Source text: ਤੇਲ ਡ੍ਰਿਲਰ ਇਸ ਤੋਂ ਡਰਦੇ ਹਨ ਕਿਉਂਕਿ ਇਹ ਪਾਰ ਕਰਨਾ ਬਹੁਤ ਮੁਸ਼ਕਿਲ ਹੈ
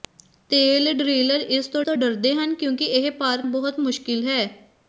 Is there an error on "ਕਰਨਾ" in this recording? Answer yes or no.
yes